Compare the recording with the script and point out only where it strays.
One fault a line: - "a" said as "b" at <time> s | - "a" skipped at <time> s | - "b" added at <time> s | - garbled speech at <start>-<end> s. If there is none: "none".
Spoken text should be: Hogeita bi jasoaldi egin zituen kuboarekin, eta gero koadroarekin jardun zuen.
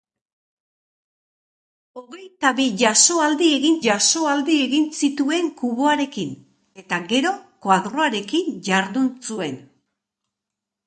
- "jasoaldi egin" added at 3.9 s